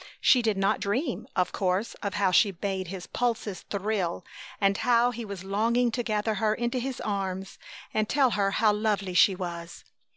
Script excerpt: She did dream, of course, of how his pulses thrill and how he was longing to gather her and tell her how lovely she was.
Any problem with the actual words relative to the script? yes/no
yes